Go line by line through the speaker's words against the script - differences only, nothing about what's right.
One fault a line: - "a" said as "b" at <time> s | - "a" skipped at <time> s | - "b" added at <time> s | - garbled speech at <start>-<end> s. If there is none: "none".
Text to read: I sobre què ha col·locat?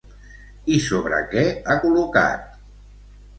none